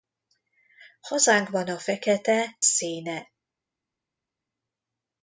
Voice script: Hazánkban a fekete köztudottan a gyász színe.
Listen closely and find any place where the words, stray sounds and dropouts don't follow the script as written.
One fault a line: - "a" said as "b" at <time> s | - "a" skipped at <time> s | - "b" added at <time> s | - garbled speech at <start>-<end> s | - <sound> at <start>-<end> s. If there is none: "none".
- "köztudottan a gyász" skipped at 2.6 s